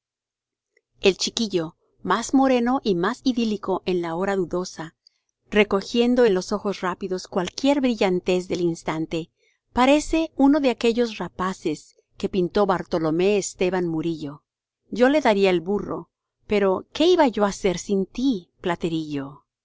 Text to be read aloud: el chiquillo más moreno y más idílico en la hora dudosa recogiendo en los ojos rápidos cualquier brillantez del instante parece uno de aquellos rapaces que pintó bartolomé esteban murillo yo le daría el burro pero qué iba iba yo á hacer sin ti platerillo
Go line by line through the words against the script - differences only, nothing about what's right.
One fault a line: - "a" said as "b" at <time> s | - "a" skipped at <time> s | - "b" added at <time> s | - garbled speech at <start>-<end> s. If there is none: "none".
- "iba" skipped at 17.3 s